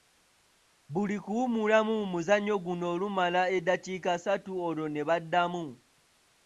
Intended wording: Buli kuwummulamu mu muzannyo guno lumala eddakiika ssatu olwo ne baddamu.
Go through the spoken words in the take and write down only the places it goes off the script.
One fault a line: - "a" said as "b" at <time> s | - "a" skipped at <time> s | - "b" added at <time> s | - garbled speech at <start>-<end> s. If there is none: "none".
none